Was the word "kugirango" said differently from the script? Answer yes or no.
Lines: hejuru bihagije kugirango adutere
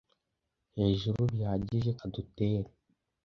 yes